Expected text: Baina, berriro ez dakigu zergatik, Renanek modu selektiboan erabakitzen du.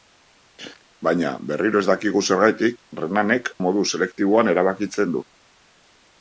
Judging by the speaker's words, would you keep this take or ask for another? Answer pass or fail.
pass